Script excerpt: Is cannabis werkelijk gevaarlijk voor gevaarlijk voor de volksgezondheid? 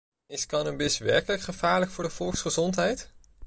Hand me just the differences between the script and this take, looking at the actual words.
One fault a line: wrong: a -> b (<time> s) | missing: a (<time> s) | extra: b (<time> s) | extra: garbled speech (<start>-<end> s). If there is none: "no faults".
missing: gevaarlijk voor (2.0 s)